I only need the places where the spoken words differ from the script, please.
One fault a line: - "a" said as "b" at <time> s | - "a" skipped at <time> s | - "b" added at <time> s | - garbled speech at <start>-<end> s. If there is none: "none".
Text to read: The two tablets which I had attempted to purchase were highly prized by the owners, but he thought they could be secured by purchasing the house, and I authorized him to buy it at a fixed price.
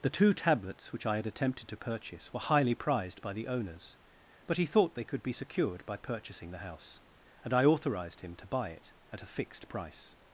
none